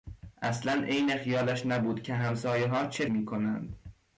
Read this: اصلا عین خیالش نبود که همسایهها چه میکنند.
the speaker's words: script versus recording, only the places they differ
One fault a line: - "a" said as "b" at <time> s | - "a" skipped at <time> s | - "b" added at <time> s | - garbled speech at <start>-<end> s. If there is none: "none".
none